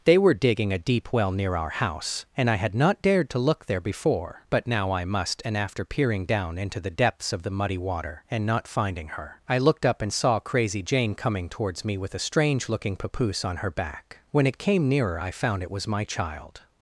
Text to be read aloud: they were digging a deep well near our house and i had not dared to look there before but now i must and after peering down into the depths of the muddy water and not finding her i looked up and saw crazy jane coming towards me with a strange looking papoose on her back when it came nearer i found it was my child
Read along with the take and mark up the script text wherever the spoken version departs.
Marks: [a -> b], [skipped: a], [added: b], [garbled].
they were digging a deep well near our house and i had not dared to look there before but now i must and after peering down into the depths of the muddy water and not finding her i looked up and saw crazy jane coming towards me with a strange looking papoose on her back when it came nearer i found it was my child